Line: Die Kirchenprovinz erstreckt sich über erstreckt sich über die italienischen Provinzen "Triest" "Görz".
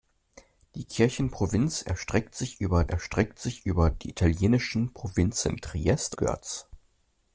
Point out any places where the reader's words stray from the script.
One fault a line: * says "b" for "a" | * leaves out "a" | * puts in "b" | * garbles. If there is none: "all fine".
all fine